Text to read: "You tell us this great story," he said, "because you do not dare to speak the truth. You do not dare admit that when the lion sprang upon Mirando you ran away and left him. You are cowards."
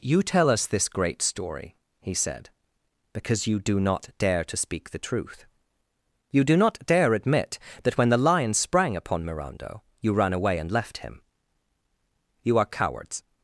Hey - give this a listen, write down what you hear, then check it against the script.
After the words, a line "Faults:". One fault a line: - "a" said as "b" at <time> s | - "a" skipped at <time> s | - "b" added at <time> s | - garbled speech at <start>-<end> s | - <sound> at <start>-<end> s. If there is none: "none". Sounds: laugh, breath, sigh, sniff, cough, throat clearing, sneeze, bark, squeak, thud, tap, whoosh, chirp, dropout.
"You tell us this great story," he said, "because you do not dare to speak the truth. You do not dare admit that when the lion sprang upon Mirando you ran away and left him. You are cowards."
Faults:
none